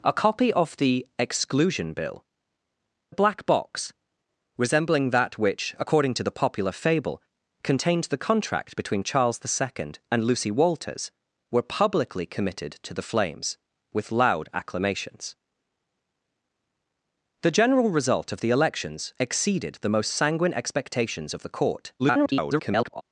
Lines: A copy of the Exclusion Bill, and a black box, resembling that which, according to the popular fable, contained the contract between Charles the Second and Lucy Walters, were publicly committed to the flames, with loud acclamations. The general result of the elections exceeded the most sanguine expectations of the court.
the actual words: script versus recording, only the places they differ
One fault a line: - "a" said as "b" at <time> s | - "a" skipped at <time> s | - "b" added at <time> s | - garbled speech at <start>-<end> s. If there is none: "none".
- "and" skipped at 2.2 s
- garbled speech at 22.0-23.0 s